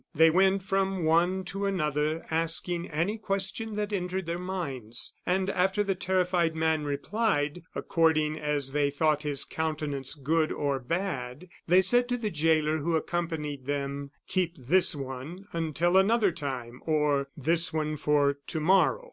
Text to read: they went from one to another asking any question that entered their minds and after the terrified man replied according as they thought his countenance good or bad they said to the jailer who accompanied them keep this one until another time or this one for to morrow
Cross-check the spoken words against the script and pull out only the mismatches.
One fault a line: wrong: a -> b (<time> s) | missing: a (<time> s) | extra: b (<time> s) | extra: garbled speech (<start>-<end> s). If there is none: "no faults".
no faults